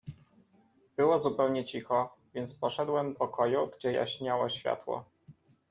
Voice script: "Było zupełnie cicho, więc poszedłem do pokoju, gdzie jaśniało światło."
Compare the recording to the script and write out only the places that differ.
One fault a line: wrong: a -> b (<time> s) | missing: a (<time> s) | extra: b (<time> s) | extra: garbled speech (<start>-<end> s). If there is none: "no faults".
missing: do (3.1 s)